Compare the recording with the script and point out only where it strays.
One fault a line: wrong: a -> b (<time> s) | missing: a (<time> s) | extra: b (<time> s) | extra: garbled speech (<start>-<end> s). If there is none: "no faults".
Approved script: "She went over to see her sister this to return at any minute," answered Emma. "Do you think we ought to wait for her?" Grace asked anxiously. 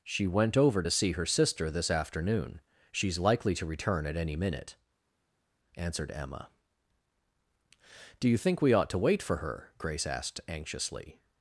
extra: afternoon She's likely (1.9 s)